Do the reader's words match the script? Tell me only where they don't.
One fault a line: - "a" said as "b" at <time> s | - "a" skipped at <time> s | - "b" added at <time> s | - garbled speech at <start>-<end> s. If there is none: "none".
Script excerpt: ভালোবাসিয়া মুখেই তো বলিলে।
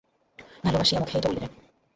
none